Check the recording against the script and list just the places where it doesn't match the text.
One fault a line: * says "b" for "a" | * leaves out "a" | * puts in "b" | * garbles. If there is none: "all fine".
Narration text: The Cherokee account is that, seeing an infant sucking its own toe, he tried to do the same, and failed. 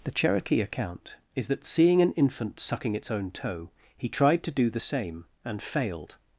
all fine